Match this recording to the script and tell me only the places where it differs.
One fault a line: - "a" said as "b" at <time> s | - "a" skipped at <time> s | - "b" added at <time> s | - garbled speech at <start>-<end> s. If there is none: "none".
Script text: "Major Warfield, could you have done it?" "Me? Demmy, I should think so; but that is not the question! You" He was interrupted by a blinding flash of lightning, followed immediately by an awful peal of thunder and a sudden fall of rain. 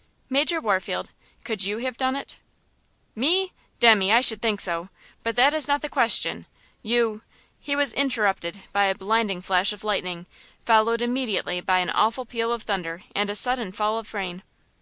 none